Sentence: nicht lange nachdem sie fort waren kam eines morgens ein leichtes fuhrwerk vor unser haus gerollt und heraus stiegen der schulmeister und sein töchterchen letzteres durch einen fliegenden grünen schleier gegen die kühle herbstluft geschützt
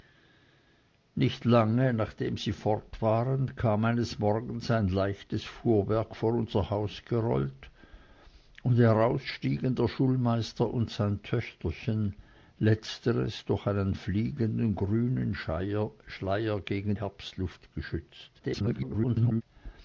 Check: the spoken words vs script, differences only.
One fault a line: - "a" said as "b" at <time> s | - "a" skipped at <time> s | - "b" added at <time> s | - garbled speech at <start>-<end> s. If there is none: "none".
- "die kühle" skipped at 17.0 s
- garbled speech at 18.4-19.4 s